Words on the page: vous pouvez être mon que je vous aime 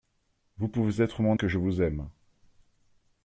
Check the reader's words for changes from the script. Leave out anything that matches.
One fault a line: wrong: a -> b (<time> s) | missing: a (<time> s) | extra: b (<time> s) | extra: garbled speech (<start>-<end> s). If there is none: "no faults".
no faults